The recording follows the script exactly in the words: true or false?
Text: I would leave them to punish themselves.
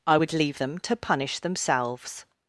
true